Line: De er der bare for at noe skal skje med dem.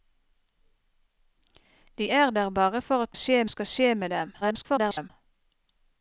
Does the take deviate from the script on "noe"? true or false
true